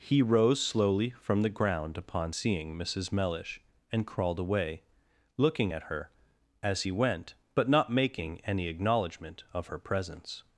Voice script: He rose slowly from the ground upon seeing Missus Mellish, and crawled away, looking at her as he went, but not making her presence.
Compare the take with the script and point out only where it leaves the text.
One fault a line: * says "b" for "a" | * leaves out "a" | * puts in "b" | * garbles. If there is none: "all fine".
* puts in "any acknowledgment of"